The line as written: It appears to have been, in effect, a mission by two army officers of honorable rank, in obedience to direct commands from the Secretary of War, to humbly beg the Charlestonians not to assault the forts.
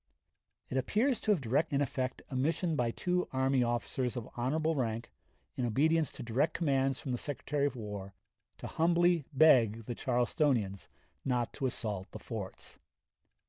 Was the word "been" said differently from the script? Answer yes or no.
yes